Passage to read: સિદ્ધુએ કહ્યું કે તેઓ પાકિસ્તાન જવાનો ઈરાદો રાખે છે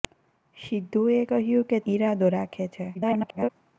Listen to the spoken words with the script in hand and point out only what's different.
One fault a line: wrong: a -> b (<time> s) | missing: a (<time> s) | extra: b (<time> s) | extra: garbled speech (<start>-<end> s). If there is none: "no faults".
missing: તેઓ પાકિસ્તાન જવાનો (1.8 s)
extra: garbled speech (2.9-3.5 s)